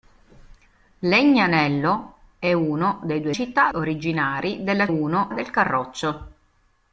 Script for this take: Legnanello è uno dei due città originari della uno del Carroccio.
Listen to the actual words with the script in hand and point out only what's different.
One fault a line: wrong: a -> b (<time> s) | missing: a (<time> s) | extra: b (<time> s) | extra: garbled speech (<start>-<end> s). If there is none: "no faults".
no faults